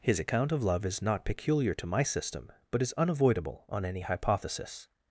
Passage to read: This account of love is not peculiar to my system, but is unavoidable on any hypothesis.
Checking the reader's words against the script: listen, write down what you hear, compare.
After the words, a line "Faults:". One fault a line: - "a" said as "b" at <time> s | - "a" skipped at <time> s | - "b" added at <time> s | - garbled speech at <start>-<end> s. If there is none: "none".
His account of love is not peculiar to my system, but is unavoidable on any hypothesis.
Faults:
- "This" said as "His" at 0.0 s